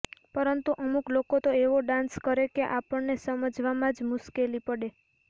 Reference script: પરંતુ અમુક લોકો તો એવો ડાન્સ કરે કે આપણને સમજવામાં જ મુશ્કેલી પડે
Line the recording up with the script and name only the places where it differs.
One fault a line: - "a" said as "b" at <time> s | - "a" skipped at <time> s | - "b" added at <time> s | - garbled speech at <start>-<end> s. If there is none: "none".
none